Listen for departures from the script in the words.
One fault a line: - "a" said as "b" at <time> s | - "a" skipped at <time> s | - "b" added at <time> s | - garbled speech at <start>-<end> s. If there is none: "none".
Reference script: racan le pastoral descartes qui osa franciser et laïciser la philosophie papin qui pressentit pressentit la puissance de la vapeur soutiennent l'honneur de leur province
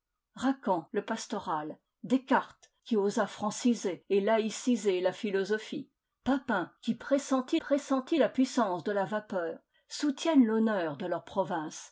none